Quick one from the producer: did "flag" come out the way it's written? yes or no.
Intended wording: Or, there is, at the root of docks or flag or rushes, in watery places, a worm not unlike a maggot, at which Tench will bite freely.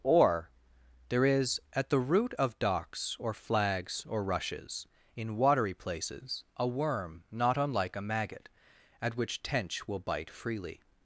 no